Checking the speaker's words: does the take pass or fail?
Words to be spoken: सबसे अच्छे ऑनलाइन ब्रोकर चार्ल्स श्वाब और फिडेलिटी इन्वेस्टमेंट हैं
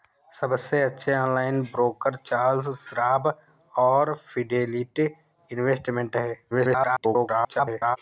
fail